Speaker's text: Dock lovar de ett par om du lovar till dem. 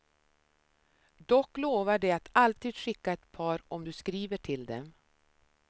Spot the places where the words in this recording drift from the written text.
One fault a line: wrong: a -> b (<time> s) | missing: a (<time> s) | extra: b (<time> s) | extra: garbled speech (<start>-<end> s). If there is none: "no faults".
extra: att alltid skicka (2.1 s)
wrong: lovar -> skriver (3.9 s)